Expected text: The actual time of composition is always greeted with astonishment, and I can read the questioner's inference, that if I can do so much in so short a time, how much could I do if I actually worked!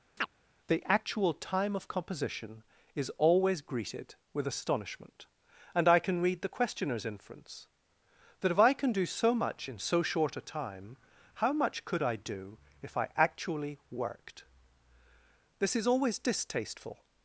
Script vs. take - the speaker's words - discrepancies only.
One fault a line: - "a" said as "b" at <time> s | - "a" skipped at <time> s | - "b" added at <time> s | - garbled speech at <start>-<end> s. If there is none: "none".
- "This is always distasteful" added at 15.6 s